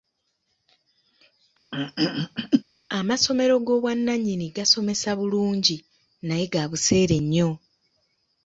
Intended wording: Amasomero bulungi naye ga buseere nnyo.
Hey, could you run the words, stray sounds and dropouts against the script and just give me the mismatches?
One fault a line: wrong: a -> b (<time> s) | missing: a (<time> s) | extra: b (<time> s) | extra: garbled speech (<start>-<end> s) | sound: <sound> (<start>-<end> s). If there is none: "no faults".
sound: throat clearing (1.7-2.6 s)
extra: g'obwannannyini gasomesa (3.7 s)